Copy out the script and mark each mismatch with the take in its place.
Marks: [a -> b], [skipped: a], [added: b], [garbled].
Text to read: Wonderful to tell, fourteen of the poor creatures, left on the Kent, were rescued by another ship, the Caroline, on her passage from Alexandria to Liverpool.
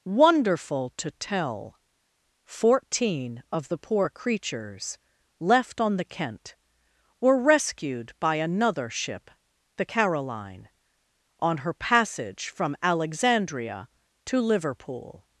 Wonderful to tell, fourteen of the poor creatures, left on the Kent, were rescued by another ship, the Caroline, on her passage from Alexandria to Liverpool.